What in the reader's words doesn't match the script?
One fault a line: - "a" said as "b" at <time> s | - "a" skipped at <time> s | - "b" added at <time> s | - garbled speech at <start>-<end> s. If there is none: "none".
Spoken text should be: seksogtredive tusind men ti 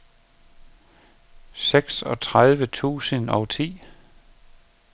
- "men" said as "og" at 3.3 s